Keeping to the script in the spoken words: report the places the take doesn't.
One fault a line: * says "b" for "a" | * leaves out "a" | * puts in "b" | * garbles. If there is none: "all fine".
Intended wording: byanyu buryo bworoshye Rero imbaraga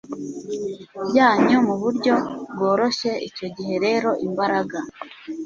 * puts in "mu"
* puts in "Icyo gihe"